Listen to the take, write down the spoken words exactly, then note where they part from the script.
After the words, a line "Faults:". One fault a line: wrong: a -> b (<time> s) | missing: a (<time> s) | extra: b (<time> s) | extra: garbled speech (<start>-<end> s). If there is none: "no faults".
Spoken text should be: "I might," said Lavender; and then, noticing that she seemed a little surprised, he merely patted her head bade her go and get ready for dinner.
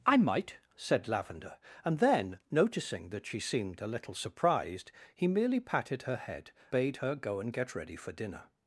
"I might," said Lavender; and then, noticing that she seemed a little surprised, he merely patted her head bade her go and get ready for dinner.
Faults:
no faults